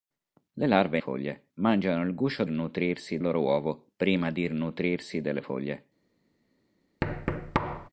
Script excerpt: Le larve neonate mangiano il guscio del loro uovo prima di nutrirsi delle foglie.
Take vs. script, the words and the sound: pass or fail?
fail